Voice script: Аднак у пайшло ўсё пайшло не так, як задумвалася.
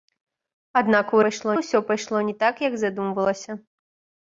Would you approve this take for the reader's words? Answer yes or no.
yes